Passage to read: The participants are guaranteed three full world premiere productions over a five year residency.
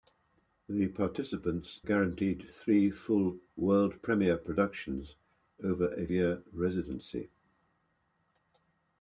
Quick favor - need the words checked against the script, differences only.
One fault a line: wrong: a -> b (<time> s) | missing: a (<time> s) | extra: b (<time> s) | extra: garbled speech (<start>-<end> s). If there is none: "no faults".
missing: are (1.8 s)
missing: five (6.1 s)